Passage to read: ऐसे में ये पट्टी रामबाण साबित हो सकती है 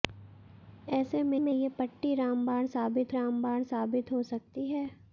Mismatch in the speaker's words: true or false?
true